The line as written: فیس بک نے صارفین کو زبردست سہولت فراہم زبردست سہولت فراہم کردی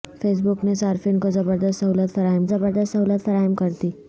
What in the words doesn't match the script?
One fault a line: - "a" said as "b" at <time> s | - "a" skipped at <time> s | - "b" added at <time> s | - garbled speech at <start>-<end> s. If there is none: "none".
none